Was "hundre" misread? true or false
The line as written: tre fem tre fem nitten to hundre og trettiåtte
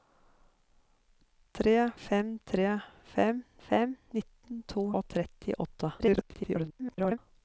true